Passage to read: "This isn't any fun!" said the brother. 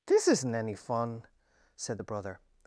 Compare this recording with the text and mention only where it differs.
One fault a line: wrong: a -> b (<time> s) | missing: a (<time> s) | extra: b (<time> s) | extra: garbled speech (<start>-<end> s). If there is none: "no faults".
no faults